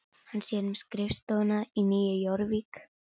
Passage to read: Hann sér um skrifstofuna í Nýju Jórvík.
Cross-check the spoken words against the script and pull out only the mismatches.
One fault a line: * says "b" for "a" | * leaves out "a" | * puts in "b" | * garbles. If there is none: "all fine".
all fine